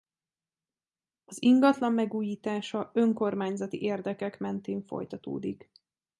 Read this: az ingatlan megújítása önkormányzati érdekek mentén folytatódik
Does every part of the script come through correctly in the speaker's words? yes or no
yes